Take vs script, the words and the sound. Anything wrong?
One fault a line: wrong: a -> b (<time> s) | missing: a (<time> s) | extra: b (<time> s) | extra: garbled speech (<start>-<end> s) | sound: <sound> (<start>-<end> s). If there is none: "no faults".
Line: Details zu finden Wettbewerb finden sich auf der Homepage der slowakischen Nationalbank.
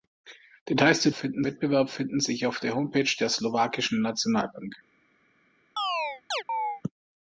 sound: chirp (5.8-6.8 s)